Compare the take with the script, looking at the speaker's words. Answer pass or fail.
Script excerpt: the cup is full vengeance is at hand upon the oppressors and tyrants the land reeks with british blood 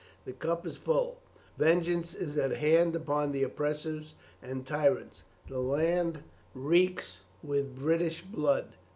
pass